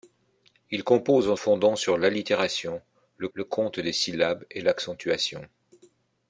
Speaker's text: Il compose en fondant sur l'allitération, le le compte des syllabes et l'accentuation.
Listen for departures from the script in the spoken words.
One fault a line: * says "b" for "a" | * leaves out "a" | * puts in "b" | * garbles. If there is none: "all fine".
all fine